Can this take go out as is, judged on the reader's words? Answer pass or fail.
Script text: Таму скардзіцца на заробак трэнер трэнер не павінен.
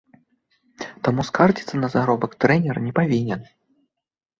fail